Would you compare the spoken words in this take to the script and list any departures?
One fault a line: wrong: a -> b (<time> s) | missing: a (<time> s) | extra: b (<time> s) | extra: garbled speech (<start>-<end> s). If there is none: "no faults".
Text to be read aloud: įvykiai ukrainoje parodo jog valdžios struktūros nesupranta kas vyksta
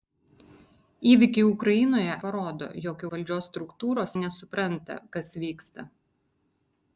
no faults